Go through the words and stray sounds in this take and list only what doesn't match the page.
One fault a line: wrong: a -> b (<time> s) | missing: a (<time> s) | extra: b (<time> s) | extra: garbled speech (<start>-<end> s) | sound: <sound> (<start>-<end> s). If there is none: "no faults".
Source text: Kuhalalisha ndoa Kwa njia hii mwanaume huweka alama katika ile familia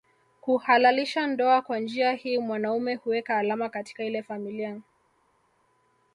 no faults